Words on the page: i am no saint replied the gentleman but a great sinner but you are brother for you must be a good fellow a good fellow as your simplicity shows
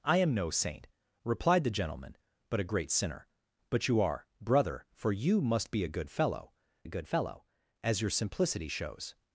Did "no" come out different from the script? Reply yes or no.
no